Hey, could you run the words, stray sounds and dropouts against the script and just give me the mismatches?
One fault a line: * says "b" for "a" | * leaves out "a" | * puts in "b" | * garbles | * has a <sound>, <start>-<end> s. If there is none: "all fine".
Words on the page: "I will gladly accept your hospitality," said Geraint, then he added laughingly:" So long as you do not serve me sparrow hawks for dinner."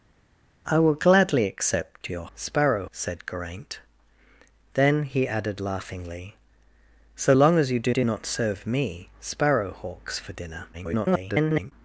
* says "sparrow" for "hospitality"
* puts in "do"
* garbles